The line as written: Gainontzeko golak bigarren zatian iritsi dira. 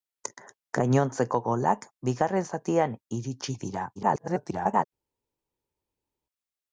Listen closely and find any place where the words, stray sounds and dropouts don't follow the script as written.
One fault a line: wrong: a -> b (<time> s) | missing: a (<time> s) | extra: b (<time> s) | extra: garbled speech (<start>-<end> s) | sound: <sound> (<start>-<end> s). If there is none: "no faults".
extra: garbled speech (4.0-4.8 s)